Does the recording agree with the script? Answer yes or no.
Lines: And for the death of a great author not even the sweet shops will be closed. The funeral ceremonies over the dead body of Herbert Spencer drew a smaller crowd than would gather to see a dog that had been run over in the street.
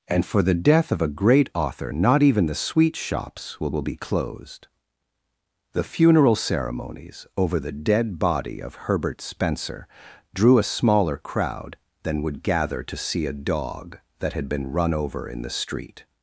no